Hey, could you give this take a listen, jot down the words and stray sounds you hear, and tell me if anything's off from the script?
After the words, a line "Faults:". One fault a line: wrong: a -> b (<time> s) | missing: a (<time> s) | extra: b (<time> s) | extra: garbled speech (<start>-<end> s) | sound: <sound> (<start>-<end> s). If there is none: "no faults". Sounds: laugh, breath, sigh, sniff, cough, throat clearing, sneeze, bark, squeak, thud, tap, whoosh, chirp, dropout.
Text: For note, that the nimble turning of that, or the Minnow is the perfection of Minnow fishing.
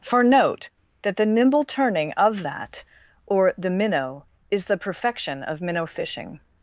For note, that the nimble turning of that, or the Minnow is the perfection of Minnow fishing.
Faults:
no faults